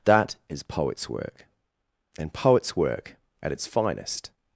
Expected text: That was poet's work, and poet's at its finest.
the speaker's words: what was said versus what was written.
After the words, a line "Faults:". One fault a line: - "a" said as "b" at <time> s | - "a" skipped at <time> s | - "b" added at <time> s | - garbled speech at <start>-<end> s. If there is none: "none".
That is poet's work, and poet's work at its finest.
Faults:
- "was" said as "is" at 0.5 s
- "work" added at 2.8 s